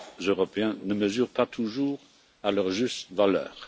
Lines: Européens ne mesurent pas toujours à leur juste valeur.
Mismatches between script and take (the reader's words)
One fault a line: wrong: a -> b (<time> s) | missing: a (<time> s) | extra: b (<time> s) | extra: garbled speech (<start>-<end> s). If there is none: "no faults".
no faults